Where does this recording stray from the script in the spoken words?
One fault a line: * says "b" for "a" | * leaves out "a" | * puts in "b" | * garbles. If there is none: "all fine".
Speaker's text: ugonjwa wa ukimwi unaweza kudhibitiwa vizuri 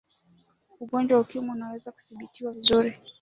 all fine